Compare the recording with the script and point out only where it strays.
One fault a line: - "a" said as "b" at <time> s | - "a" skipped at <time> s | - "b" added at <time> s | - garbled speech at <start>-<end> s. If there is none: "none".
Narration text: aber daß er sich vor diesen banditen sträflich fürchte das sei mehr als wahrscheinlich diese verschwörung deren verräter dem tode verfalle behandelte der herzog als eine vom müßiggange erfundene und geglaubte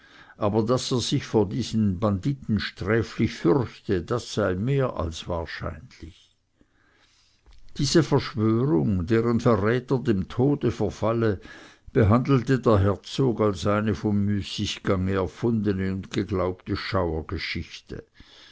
none